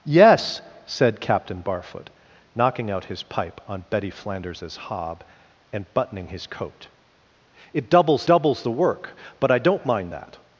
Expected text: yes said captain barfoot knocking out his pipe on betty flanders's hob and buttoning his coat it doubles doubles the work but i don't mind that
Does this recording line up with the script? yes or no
yes